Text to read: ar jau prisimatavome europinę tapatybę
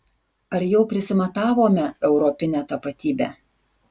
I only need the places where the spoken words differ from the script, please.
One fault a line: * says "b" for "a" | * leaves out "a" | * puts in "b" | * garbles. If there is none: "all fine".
all fine